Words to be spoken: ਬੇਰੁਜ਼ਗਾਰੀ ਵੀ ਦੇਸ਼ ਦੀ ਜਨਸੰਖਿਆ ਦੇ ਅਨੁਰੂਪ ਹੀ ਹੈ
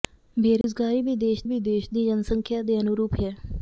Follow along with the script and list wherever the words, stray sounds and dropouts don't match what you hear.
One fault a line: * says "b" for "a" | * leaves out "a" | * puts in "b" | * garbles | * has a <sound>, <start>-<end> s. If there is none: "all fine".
* has a dropout, 0.6-0.6 s
* puts in "ਵੀ ਦੇਸ਼"
* leaves out "ਹੀ"